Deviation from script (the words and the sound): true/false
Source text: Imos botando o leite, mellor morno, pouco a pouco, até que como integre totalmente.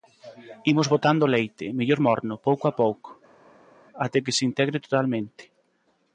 true